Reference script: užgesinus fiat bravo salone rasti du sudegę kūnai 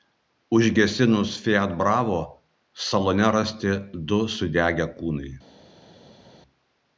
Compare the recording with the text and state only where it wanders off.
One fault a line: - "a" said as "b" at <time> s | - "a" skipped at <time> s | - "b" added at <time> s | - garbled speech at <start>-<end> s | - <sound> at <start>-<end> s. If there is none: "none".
none